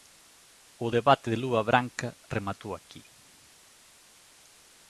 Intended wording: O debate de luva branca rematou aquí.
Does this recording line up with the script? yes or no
yes